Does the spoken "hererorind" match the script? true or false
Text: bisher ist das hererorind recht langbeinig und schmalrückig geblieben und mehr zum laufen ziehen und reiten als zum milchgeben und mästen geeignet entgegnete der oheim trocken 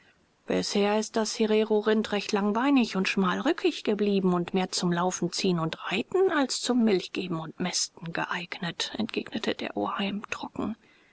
true